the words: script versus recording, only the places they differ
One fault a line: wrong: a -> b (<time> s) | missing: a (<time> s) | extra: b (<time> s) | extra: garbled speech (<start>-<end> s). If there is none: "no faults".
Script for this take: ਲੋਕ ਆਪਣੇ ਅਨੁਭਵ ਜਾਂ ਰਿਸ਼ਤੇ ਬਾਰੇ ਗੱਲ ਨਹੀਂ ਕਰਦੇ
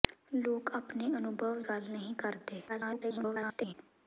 missing: ਜਾਂ ਰਿਸ਼ਤੇ ਬਾਰੇ (1.6 s)
extra: garbled speech (2.7-3.7 s)